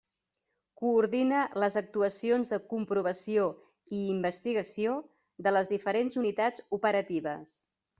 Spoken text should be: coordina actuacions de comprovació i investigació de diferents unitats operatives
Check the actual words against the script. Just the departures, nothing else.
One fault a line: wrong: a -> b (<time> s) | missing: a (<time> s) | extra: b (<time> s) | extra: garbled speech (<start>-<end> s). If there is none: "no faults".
extra: les (1.6 s)
extra: les (5.6 s)